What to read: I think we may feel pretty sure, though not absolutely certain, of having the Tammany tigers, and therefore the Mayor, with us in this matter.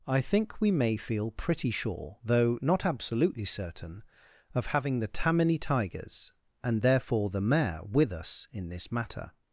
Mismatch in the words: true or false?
false